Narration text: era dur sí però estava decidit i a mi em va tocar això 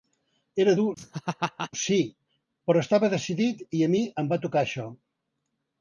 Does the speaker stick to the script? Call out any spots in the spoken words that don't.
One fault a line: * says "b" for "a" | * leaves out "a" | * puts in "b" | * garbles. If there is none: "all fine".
all fine